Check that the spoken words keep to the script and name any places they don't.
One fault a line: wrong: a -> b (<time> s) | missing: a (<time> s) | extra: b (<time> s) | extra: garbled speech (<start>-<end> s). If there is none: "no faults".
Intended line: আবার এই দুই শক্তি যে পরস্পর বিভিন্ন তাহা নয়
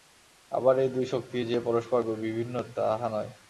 no faults